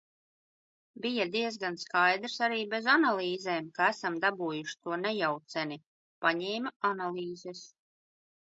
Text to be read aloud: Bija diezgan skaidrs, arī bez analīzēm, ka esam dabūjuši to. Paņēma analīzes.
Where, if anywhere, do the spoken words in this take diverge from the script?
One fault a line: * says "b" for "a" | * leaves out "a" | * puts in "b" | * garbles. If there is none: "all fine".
* puts in "nejauceni"